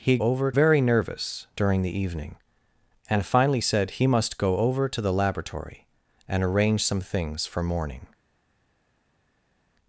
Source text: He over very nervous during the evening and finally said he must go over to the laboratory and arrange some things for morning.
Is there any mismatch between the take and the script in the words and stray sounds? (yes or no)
no